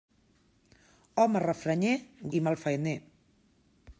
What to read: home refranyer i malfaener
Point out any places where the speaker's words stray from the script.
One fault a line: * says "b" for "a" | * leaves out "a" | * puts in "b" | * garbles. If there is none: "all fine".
all fine